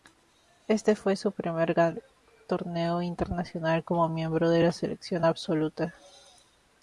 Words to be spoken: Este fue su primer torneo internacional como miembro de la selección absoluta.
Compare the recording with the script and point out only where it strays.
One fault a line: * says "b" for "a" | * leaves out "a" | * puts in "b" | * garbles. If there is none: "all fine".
* puts in "gran"